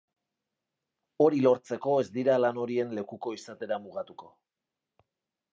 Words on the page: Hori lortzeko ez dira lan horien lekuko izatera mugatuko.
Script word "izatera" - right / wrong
right